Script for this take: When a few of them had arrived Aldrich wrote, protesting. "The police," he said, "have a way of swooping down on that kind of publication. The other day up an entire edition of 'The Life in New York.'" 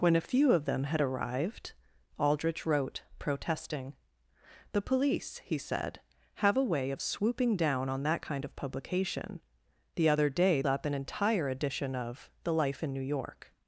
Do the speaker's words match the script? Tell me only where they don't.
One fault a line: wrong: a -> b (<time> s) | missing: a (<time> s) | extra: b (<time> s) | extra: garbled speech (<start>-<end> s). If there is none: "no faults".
no faults